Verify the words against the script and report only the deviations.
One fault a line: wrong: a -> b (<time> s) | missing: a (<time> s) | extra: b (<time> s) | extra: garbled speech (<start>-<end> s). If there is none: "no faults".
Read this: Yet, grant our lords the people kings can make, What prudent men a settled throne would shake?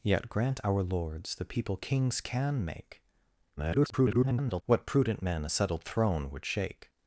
extra: garbled speech (3.6-4.6 s)